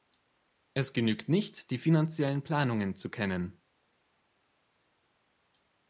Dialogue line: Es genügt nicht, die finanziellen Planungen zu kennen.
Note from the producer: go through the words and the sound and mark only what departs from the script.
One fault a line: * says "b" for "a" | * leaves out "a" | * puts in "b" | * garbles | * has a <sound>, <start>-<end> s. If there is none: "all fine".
all fine